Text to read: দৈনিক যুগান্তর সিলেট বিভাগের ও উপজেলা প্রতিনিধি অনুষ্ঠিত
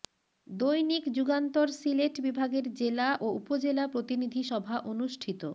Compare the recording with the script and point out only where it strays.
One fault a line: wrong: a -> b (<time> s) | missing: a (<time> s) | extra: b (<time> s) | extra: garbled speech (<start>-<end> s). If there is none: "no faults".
extra: জেলা (2.7 s)
extra: সভা (4.5 s)